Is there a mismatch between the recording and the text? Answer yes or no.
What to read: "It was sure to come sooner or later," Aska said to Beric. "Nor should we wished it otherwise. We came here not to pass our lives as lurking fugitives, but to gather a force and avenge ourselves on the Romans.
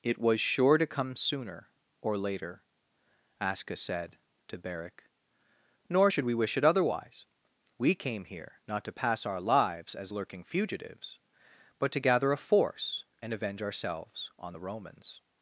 yes